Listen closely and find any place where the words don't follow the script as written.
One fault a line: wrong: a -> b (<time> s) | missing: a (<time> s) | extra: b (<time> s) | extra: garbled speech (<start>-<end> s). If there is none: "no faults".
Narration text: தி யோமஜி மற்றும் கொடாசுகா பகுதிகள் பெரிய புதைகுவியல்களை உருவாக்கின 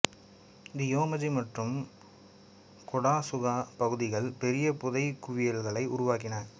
no faults